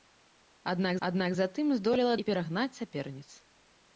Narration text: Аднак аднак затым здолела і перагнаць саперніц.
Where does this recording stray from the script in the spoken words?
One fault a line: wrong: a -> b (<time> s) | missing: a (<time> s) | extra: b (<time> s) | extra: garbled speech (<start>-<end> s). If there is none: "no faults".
no faults